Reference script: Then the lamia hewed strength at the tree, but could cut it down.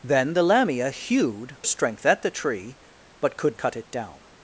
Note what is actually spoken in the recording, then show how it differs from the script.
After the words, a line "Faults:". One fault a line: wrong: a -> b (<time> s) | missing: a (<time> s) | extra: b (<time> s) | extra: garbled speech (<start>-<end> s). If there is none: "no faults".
Then the lamia hewed strength at the tree, but could cut it down.
Faults:
no faults